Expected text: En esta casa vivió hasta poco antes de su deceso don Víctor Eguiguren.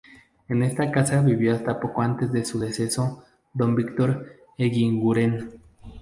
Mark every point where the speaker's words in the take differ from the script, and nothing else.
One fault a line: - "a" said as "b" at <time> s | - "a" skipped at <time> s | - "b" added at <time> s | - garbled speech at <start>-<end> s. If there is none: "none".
none